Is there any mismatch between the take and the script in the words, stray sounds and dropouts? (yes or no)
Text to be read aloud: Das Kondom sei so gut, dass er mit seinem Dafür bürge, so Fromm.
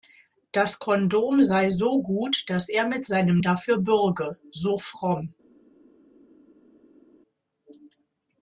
no